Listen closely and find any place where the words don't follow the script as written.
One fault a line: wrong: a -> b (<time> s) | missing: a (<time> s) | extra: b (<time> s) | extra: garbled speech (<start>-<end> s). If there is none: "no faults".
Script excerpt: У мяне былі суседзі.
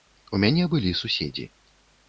no faults